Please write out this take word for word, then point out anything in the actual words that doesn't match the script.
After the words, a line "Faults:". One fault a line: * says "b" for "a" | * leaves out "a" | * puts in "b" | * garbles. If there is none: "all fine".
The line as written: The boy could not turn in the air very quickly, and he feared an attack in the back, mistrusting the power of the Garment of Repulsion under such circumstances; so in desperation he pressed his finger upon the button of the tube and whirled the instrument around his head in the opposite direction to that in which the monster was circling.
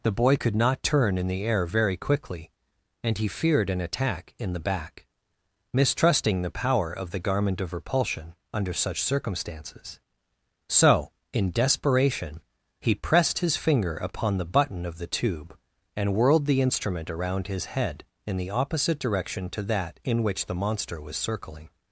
The boy could not turn in the air very quickly, and he feared an attack in the back, mistrusting the power of the Garment of Repulsion under such circumstances; so in desperation he pressed his finger upon the button of the tube and whirled the instrument around his head in the opposite direction to that in which the monster was circling.
Faults:
all fine